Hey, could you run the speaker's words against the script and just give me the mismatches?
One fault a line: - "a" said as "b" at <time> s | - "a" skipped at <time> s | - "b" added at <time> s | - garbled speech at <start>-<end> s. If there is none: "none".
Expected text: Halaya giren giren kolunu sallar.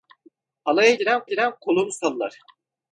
none